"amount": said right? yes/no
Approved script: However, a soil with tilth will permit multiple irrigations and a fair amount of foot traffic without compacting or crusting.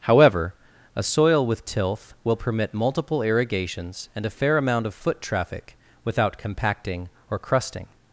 yes